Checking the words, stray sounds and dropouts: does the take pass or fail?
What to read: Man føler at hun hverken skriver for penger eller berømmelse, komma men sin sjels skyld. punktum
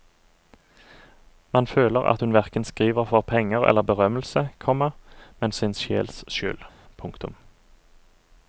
pass